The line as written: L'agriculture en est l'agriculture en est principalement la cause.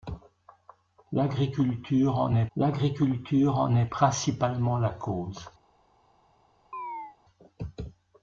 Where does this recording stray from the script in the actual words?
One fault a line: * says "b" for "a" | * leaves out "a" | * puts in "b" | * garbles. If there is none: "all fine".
all fine